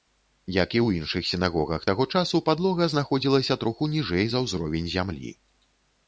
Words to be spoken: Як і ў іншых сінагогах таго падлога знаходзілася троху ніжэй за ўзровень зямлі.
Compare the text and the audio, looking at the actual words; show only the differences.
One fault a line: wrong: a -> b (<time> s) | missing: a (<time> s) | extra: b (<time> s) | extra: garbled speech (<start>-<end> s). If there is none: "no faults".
extra: часу (2.2 s)